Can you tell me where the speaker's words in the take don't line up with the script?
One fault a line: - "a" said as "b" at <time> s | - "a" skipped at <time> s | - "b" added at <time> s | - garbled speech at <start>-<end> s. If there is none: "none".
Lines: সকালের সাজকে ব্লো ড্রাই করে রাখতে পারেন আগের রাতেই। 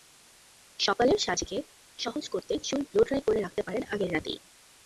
- "সহজ করতে চুল" added at 2.0 s